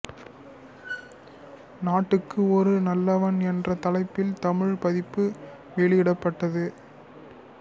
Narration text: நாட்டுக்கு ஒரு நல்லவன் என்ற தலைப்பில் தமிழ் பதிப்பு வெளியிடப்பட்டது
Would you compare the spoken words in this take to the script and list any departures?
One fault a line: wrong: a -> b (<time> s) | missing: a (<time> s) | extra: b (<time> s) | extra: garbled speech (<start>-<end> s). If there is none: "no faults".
no faults